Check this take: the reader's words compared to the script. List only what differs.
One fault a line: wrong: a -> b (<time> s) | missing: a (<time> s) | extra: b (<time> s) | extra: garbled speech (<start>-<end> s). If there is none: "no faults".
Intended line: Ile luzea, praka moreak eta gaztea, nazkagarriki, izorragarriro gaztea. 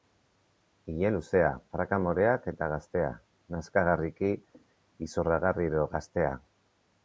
no faults